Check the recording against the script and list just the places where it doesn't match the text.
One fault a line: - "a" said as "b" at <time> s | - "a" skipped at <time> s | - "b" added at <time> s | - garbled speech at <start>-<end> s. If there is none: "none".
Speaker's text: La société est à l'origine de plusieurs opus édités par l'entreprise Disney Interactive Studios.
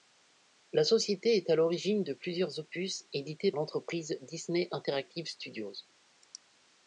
- "par" skipped at 3.5 s